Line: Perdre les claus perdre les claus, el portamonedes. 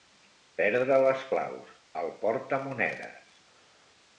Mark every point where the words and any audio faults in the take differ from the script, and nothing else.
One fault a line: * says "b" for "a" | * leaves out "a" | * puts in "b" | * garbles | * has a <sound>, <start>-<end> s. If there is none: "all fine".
* leaves out "perdre les claus"